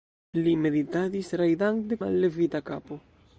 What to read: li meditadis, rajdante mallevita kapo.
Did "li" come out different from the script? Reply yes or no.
no